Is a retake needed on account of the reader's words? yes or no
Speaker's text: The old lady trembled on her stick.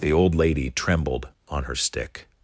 no